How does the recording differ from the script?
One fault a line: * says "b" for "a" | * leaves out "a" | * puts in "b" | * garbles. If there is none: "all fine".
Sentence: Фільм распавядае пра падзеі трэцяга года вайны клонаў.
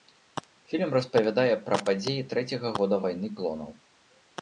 all fine